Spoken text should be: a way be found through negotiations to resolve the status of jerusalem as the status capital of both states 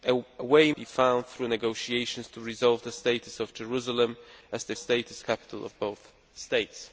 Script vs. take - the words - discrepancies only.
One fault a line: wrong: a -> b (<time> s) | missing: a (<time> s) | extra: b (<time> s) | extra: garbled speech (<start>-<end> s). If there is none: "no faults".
no faults